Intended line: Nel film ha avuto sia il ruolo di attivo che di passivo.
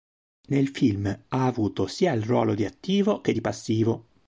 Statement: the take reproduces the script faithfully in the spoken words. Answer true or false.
true